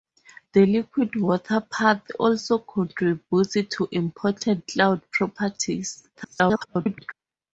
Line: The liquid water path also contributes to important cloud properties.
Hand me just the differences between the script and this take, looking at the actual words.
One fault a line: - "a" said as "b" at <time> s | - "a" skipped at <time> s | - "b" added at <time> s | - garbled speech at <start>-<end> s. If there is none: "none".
- garbled speech at 6.1-7.1 s